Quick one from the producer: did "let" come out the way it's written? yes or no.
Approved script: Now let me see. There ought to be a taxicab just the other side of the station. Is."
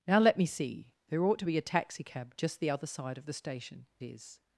yes